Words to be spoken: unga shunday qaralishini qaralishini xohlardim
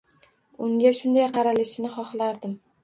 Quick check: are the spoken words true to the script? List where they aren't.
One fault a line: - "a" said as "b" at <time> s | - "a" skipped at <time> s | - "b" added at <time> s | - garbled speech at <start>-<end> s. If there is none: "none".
- "qaralishini" skipped at 2.0 s